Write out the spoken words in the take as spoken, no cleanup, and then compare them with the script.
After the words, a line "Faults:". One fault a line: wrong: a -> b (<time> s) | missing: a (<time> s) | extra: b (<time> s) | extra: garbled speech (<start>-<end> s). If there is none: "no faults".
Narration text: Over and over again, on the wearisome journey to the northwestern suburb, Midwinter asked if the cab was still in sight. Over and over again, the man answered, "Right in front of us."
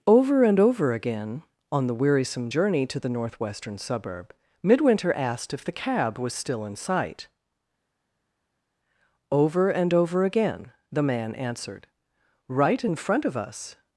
Over and over again, on the wearisome journey to the northwestern suburb, Midwinter asked if the cab was still in sight. Over and over again, the man answered, "Right in front of us."
Faults:
no faults